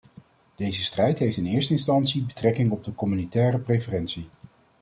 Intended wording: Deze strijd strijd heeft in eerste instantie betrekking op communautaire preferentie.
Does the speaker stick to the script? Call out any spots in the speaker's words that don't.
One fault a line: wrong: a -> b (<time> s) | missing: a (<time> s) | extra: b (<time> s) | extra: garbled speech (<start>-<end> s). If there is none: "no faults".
missing: strijd (1.2 s)
extra: de (2.8 s)